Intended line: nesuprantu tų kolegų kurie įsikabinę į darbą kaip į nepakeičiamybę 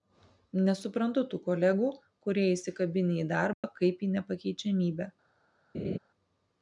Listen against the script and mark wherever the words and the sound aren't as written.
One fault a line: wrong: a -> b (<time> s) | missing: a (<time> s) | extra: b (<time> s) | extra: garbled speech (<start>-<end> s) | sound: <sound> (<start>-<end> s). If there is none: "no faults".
sound: dropout (3.5-3.6 s)
sound: laugh (5.7-6.0 s)